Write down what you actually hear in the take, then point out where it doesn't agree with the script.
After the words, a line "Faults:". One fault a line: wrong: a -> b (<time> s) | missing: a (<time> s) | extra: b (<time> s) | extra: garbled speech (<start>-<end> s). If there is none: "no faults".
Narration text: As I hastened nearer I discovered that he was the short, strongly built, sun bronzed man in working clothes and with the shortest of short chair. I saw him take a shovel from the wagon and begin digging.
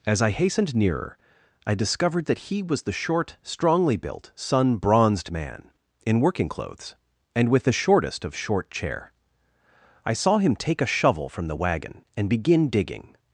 As I hastened nearer I discovered that he was the short, strongly built, sun bronzed man in working clothes and with the shortest of short chair. I saw him take a shovel from the wagon and begin digging.
Faults:
no faults